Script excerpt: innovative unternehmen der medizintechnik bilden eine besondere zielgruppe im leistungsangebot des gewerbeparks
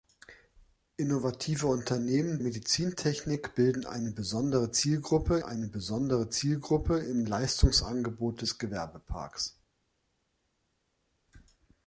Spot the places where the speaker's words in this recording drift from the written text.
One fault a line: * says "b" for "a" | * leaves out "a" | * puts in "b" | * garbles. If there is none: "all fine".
* leaves out "der"
* puts in "eine besondere zielgruppe"